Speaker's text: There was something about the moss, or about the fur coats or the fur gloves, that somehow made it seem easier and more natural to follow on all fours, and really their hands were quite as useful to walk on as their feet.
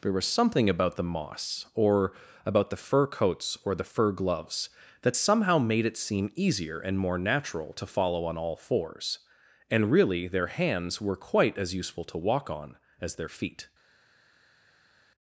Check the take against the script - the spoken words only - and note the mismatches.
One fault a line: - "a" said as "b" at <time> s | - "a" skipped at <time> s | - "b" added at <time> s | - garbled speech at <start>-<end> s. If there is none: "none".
none